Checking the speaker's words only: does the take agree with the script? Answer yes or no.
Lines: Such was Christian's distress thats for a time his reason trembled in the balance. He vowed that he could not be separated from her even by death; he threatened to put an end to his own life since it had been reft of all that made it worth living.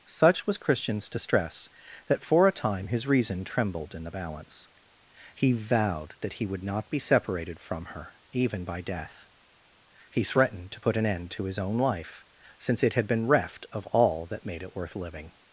no